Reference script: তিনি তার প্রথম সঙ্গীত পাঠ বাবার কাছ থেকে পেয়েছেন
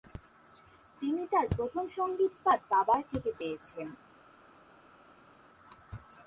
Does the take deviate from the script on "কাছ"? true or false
true